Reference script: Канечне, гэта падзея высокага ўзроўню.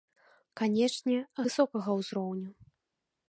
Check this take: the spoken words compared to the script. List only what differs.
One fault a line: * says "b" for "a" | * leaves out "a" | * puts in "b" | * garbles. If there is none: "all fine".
* leaves out "гэта падзея"